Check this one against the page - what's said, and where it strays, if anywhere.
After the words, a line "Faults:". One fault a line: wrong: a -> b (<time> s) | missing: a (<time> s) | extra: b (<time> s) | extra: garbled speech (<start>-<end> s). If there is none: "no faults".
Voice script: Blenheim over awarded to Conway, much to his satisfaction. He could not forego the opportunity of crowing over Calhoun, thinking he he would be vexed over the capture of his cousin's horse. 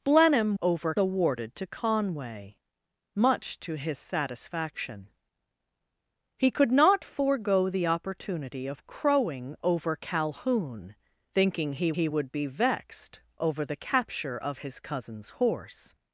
Blenheim over awarded to Conway, much to his satisfaction. He could not forego the opportunity of crowing over Calhoun, thinking he he would be vexed over the capture of his cousin's horse.
Faults:
no faults